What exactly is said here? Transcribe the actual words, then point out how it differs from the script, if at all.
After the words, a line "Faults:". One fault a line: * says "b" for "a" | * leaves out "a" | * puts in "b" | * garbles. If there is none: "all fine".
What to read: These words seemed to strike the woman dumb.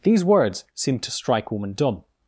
These words seemed to strike woman dumb.
Faults:
* leaves out "the"